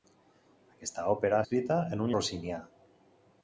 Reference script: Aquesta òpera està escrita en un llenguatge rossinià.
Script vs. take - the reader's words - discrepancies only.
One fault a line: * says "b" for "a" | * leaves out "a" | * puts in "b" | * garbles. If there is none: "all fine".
* leaves out "està"
* leaves out "llenguatge"